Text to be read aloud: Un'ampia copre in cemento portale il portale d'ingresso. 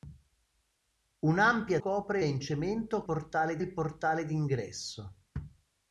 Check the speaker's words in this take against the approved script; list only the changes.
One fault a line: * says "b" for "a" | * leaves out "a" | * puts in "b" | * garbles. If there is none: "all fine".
all fine